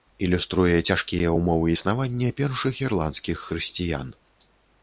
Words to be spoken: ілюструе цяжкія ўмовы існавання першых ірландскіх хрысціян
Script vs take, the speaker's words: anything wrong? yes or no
no